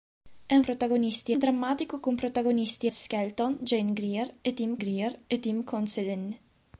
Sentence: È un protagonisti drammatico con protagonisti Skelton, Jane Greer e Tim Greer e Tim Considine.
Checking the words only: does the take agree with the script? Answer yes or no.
yes